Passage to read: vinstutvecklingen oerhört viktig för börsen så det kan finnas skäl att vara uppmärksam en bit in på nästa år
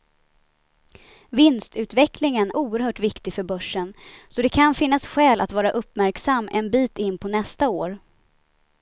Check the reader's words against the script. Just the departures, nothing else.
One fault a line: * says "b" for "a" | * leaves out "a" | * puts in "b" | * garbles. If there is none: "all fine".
all fine